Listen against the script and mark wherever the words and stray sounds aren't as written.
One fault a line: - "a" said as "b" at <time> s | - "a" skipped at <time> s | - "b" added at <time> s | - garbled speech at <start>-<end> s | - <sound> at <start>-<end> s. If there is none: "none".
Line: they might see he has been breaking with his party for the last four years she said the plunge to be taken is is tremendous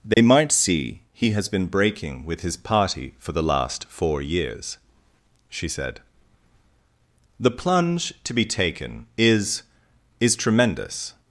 - dropout at 0.1-0.2 s